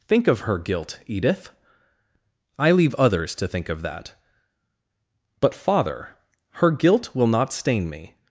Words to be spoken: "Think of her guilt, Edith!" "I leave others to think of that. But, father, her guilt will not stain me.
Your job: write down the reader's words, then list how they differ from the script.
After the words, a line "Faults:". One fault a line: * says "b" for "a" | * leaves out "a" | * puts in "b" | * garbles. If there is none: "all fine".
"Think of her guilt, Edith!" "I leave others to think of that. But, father, her guilt will not stain me.
Faults:
all fine